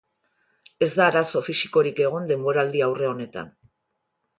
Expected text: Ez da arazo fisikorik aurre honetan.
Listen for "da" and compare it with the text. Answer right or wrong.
right